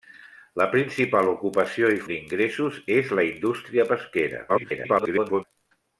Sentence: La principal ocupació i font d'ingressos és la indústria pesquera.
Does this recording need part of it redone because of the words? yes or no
yes